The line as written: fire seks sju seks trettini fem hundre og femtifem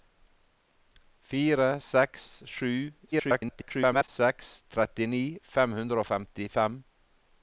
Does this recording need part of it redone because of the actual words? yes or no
yes